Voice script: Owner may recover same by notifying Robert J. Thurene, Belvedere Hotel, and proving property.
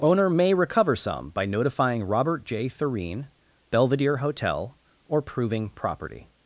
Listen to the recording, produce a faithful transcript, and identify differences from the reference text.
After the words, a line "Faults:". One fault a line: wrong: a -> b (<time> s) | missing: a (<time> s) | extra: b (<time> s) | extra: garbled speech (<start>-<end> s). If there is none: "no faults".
Owner may recover some by notifying Robert J. Thurene, Belvedere Hotel, or proving property.
Faults:
wrong: same -> some (0.9 s)
wrong: and -> or (5.1 s)